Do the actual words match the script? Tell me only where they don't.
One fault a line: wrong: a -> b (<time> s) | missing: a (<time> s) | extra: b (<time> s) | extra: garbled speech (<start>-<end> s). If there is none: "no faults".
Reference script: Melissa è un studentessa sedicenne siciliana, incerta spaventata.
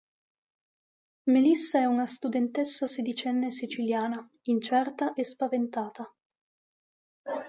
wrong: un -> una (1.9 s)
extra: e (5.1 s)